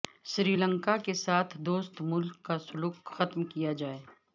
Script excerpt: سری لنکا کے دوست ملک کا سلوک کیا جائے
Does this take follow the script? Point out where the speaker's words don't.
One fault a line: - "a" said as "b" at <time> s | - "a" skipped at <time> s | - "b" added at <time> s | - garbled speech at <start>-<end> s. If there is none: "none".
- "ساتھ" added at 1.2 s
- "ختم" added at 3.1 s